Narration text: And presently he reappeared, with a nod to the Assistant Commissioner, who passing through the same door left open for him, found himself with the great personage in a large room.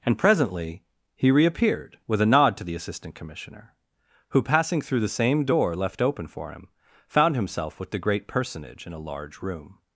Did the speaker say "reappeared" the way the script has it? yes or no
yes